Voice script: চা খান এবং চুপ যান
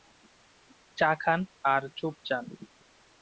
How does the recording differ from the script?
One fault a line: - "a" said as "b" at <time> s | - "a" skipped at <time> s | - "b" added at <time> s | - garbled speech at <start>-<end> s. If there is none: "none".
- "এবং" said as "আর" at 1.6 s